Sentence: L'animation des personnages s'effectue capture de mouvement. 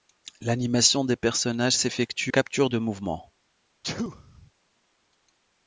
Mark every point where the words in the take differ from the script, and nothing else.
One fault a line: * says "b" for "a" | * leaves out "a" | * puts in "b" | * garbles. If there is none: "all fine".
all fine